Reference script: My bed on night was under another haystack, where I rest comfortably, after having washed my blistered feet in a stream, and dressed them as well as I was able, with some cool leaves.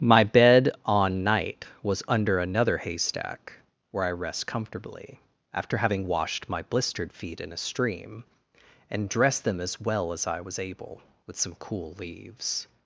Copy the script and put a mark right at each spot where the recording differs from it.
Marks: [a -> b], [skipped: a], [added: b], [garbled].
My bed on night was under another haystack, where I rest comfortably, after having washed my blistered feet in a stream, and dressed them as well as I was able, with some cool leaves.